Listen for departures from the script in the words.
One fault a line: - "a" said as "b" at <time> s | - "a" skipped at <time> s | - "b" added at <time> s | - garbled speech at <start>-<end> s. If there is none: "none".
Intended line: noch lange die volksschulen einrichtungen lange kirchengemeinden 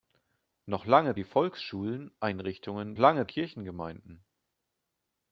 none